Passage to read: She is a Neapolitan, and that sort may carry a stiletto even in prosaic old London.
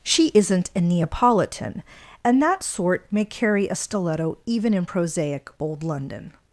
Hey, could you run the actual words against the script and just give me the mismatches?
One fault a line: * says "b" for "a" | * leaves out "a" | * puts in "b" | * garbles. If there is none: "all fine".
* says "isn't" for "is"